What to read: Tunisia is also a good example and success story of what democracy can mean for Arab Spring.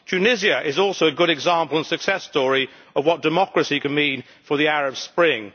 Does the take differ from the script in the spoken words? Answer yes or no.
yes